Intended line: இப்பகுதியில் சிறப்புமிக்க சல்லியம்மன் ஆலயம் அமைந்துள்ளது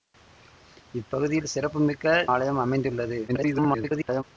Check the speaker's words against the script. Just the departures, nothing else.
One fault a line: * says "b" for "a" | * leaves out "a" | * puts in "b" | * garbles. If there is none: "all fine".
* leaves out "சல்லியம்மன்"
* garbles